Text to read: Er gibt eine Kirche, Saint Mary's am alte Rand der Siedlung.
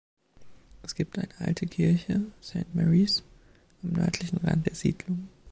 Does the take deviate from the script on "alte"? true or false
true